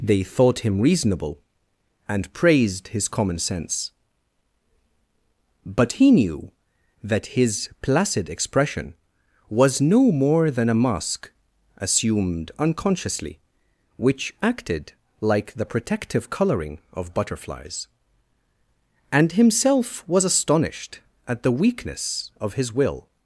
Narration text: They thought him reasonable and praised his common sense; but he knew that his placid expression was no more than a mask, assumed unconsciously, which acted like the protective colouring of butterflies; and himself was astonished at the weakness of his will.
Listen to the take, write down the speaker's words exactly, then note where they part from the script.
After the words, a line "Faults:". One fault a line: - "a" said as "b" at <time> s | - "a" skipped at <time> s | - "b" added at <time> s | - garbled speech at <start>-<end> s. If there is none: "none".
They thought him reasonable and praised his common sense; but he knew that his placid expression was no more than a mask, assumed unconsciously, which acted like the protective colouring of butterflies; and himself was astonished at the weakness of his will.
Faults:
none